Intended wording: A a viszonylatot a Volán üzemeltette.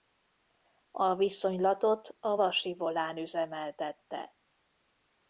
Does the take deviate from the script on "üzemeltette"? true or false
false